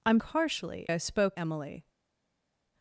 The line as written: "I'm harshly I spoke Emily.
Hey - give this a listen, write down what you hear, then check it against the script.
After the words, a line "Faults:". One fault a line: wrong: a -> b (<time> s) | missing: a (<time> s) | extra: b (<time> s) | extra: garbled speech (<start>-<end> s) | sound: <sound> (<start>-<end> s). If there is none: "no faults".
"I'm harshly I spoke Emily.
Faults:
no faults